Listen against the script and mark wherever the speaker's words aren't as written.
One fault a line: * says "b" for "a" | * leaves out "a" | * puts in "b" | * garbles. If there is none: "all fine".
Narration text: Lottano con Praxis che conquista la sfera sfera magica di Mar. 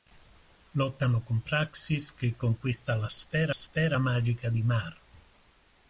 all fine